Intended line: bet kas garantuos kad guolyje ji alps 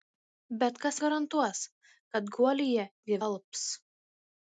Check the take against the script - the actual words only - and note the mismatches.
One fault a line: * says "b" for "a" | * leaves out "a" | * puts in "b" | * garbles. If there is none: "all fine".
all fine